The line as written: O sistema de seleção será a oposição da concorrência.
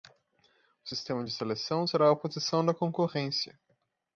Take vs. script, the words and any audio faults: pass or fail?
pass